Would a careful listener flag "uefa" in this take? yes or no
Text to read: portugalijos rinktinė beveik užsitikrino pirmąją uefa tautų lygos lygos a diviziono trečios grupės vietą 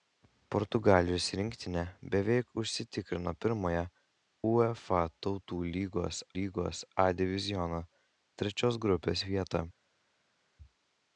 no